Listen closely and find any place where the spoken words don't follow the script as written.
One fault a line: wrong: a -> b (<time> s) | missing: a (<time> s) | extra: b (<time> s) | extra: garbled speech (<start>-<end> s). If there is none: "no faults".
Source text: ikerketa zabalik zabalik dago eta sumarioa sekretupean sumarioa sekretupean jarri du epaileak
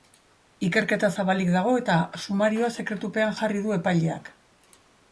missing: zabalik (1.5 s)
missing: sumarioa sekretupean (3.4 s)